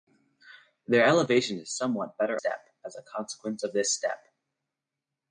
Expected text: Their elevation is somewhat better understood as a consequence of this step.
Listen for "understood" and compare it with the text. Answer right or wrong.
wrong